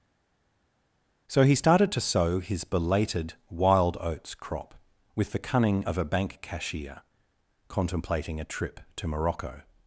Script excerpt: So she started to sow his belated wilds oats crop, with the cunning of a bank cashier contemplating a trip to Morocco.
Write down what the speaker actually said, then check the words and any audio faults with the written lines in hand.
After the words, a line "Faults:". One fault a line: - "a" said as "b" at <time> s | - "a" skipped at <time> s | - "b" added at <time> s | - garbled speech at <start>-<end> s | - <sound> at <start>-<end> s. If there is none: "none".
So he started to sow his belated wild oats crop, with the cunning of a bank cashier contemplating a trip to Morocco.
Faults:
- "she" said as "he" at 1.4 s
- "wilds" said as "wild" at 3.5 s